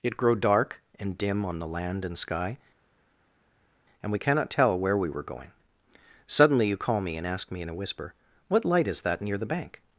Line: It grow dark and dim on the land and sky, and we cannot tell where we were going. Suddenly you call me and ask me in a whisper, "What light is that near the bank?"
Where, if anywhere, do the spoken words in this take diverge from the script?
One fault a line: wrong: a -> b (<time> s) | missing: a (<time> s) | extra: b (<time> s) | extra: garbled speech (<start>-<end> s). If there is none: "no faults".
no faults